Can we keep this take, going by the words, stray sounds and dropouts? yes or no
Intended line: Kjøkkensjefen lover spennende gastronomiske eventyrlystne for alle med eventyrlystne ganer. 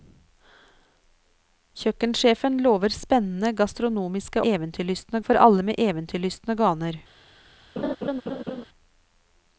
no